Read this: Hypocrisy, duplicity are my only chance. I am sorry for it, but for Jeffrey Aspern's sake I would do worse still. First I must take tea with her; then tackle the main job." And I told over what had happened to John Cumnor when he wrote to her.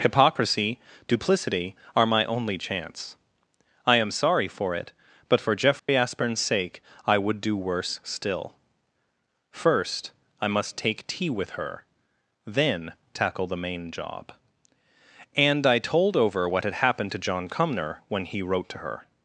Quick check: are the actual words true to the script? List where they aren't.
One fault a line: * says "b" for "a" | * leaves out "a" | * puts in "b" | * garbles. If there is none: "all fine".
all fine